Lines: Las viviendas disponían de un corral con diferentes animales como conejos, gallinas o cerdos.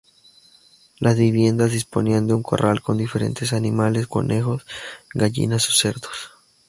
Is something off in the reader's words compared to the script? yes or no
yes